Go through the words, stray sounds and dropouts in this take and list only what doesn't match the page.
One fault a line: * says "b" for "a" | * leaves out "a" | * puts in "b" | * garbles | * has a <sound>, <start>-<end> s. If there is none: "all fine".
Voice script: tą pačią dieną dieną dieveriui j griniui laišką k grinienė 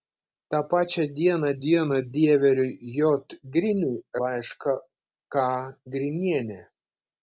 all fine